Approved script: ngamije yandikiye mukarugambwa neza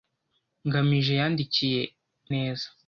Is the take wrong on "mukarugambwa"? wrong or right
wrong